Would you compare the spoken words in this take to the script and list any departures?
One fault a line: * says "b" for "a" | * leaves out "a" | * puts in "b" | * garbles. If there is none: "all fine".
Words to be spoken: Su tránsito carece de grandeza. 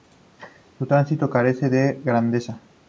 all fine